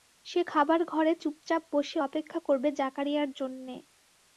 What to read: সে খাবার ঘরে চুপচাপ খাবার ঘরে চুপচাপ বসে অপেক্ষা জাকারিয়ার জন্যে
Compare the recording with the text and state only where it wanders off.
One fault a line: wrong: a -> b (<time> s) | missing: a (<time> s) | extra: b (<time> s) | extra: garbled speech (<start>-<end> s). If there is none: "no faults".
missing: খাবার ঘরে চুপচাপ (1.6 s)
extra: করবে (2.4 s)